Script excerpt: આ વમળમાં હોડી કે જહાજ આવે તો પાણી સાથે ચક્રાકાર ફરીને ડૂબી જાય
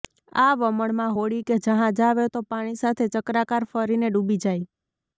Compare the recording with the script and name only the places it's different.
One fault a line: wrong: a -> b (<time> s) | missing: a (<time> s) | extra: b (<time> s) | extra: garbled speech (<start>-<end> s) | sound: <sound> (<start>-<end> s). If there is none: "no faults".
no faults